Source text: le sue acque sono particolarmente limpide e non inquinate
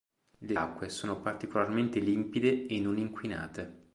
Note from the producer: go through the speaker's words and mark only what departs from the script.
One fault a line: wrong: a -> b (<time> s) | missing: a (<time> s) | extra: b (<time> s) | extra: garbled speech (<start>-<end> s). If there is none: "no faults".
missing: sue (0.6 s)